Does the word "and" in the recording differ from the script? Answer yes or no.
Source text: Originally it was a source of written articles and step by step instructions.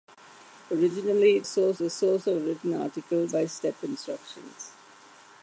yes